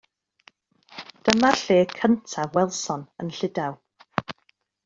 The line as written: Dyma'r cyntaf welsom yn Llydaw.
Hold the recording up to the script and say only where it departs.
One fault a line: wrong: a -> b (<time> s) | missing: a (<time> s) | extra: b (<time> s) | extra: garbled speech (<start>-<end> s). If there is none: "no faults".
extra: lle (1.6 s)